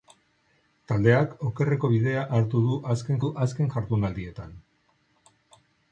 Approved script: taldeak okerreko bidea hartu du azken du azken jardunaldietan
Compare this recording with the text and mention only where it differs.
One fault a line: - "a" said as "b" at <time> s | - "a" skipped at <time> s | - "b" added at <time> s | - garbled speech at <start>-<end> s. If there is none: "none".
none